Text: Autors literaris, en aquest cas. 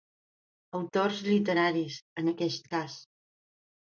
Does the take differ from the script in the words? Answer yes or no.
no